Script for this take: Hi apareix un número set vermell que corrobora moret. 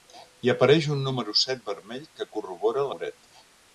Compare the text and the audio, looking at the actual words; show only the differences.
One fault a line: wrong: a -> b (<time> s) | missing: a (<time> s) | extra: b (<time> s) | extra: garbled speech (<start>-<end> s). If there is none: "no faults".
no faults